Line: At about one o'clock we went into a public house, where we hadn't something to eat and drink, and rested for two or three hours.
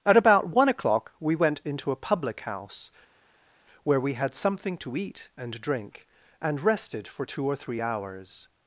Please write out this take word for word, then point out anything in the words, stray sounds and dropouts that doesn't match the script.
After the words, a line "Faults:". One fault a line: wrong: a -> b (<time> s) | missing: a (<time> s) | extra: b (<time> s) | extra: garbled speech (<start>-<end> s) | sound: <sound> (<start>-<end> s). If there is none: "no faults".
At about one o'clock we went into a public house, where we had something to eat and drink, and rested for two or three hours.
Faults:
wrong: hadn't -> had (4.1 s)